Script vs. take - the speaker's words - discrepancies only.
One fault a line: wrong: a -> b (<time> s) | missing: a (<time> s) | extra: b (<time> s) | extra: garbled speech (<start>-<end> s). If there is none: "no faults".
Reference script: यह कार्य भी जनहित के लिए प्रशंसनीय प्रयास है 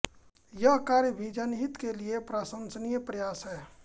no faults